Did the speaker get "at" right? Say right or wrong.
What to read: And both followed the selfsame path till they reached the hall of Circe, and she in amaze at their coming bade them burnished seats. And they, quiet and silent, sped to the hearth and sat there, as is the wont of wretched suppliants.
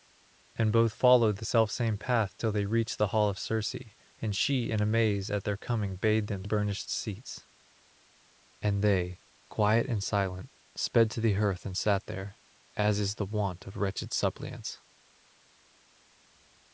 right